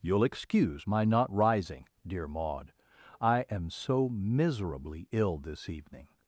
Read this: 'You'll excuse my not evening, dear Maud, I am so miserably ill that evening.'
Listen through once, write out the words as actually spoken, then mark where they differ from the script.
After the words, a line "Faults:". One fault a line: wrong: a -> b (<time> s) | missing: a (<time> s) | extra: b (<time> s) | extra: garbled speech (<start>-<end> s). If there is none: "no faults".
'You'll excuse my not rising, dear Maud, I am so miserably ill this evening.'
Faults:
wrong: evening -> rising (1.3 s)
wrong: that -> this (5.4 s)